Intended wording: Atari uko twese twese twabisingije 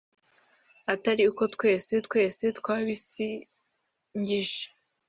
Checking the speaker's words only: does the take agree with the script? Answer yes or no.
yes